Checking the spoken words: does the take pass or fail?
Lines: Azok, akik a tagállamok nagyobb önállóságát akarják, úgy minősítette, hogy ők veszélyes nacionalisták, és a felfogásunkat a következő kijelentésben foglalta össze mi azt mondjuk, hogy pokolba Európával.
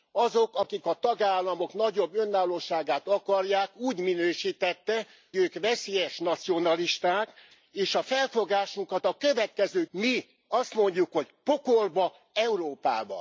fail